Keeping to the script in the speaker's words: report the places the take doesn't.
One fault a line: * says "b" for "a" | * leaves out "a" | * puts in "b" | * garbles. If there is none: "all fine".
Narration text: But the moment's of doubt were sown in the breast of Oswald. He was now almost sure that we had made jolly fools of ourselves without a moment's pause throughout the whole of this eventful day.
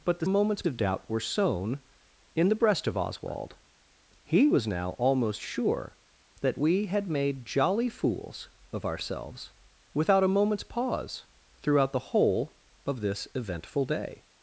all fine